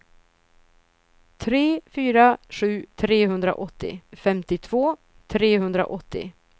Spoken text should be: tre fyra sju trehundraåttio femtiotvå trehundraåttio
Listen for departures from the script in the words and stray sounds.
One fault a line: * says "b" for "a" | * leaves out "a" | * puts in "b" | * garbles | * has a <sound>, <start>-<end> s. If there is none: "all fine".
all fine